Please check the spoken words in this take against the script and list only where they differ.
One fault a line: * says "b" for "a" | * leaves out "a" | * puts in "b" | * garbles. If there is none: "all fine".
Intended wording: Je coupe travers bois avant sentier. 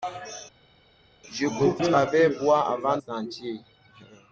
all fine